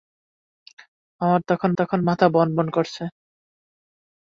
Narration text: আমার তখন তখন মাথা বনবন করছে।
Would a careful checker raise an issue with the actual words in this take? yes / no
no